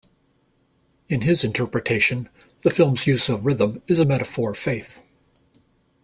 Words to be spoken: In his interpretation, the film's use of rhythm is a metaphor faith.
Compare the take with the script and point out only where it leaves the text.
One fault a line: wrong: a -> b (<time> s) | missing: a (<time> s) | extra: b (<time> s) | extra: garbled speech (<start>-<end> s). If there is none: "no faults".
no faults